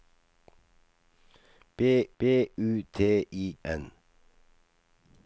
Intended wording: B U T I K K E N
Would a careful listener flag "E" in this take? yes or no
yes